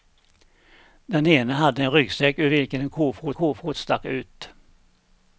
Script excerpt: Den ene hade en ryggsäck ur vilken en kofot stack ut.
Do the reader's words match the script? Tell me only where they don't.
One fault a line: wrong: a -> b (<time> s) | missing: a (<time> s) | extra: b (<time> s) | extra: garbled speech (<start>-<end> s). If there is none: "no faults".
extra: kofot (3.3 s)